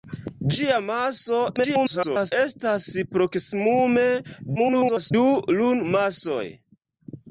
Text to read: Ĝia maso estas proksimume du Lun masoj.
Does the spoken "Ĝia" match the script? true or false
true